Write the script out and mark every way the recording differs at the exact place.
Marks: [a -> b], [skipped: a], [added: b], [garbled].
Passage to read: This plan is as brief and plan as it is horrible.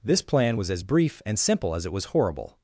This plan [is -> was] as brief and [plan -> simple] as it [is -> was] horrible.